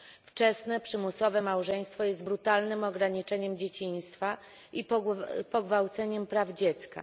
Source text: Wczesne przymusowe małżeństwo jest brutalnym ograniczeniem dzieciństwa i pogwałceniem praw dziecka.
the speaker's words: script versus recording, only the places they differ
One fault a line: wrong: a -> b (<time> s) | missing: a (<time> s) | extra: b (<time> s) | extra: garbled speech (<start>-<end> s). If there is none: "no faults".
no faults